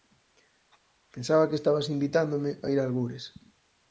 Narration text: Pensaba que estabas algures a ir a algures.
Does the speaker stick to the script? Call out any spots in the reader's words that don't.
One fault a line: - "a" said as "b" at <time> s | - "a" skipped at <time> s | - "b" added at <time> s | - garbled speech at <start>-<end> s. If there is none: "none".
- "algures" said as "invitándome" at 1.9 s